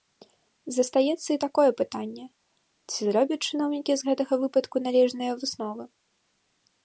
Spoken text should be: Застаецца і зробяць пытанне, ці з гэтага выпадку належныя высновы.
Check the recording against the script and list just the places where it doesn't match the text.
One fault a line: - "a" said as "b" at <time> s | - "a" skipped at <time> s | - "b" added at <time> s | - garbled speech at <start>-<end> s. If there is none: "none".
- "зробяць" said as "такое" at 1.4 s
- "зробяць чыноўнікі" added at 3.1 s